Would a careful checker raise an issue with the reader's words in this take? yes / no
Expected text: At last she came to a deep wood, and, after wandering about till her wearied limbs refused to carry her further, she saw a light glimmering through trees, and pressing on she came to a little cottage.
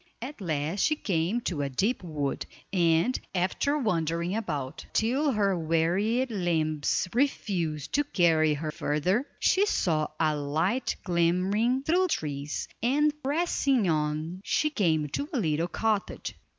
no